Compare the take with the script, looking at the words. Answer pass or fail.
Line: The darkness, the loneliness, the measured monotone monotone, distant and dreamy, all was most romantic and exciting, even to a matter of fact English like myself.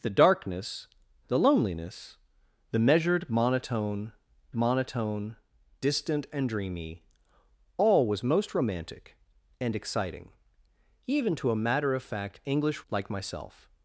pass